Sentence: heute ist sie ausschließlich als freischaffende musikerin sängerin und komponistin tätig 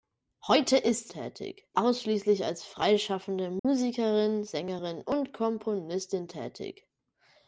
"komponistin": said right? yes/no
yes